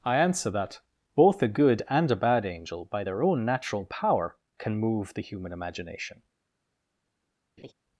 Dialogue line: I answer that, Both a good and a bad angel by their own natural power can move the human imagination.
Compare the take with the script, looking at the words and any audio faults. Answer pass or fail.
fail